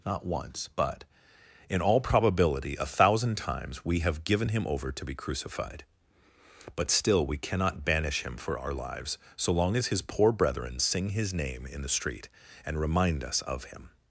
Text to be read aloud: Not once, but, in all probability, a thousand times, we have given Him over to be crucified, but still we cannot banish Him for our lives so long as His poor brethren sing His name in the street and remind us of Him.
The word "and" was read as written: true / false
true